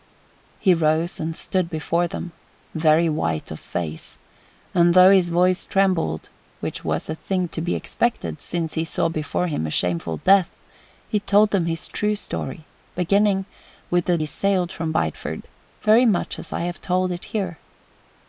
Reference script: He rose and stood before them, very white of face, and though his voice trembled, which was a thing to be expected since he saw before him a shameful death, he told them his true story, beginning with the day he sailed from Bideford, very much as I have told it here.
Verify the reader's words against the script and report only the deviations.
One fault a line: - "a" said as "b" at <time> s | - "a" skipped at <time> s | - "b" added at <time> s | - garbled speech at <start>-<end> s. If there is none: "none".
- "day" skipped at 14.2 s